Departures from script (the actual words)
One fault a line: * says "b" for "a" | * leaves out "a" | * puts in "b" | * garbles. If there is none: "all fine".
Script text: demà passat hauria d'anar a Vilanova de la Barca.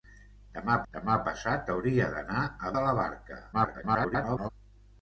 * puts in "demà"
* leaves out "Vilanova"
* garbles